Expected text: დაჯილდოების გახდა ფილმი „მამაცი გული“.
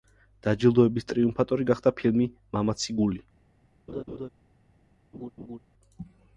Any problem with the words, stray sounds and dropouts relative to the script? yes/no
yes